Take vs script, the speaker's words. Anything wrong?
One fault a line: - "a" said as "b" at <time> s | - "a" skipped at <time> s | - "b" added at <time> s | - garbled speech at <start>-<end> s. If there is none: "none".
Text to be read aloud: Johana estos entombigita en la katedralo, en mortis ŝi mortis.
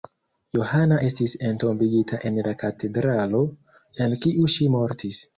- "estos" said as "estis" at 1.1 s
- "mortis" said as "kiu" at 4.3 s